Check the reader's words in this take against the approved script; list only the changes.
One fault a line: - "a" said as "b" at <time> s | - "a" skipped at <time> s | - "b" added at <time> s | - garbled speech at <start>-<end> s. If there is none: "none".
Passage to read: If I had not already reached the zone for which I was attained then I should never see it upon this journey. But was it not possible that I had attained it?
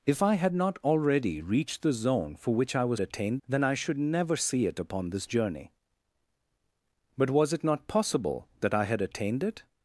none